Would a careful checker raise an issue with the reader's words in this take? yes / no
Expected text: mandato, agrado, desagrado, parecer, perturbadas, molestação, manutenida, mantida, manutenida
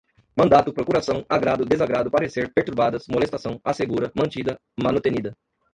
yes